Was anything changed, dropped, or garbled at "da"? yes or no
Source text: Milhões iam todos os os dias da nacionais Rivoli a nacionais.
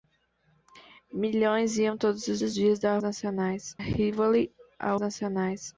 no